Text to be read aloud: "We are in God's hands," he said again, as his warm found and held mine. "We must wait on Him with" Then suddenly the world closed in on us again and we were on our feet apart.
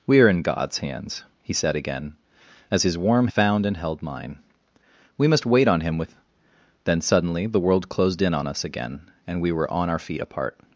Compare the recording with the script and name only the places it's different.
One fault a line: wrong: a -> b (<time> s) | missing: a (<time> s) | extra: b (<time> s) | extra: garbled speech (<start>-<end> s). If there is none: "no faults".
no faults